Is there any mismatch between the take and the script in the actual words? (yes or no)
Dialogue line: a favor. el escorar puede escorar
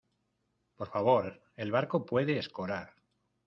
yes